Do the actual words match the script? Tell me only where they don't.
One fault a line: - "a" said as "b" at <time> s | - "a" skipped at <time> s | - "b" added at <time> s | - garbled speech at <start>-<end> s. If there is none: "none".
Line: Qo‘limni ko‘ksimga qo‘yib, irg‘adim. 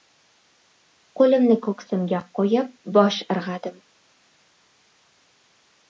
- "bosh" added at 3.0 s